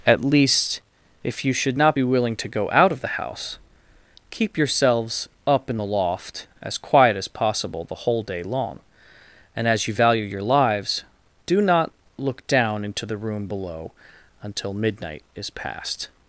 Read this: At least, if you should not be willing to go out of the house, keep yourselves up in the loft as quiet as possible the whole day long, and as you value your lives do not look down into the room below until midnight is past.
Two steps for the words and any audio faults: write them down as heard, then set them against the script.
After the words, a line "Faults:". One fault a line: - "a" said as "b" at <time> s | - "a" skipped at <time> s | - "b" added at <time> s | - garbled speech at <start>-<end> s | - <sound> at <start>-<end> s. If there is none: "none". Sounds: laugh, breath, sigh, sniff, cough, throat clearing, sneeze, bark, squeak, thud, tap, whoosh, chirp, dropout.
At least, if you should not be willing to go out of the house, keep yourselves up in the loft as quiet as possible the whole day long, and as you value your lives do not look down into the room below until midnight is past.
Faults:
none